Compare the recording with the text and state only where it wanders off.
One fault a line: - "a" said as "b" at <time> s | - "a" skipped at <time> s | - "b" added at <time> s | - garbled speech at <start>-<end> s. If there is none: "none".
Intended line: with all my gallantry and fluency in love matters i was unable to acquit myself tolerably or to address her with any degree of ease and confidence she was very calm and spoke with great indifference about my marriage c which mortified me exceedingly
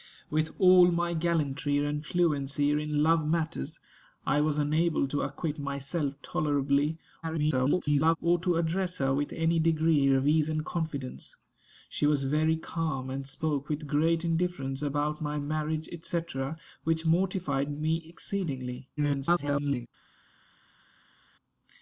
- garbled speech at 7.2-8.2 s
- garbled speech at 19.0-19.9 s